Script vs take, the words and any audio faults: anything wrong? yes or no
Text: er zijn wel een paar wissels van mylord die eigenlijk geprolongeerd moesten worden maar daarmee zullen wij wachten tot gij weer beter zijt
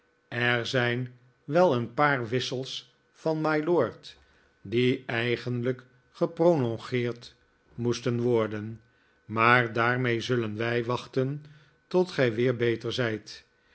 no